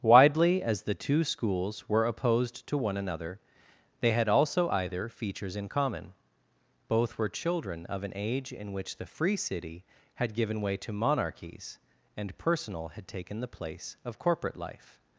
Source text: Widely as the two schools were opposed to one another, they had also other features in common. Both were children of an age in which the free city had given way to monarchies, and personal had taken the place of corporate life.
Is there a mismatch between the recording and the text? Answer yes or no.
yes